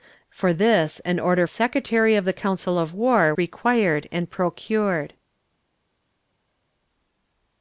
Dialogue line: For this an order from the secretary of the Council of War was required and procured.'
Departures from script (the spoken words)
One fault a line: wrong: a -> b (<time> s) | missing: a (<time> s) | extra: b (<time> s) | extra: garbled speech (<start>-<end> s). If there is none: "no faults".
missing: from the (1.4 s)
missing: was (3.3 s)